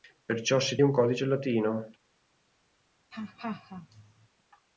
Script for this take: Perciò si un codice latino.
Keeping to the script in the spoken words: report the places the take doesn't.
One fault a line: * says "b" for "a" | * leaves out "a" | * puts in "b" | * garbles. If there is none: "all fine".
all fine